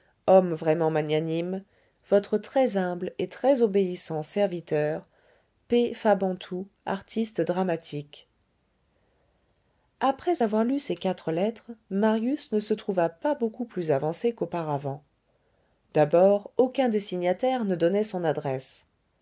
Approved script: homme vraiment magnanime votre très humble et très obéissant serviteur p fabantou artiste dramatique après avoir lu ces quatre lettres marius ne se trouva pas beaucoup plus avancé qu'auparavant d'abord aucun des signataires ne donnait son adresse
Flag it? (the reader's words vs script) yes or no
no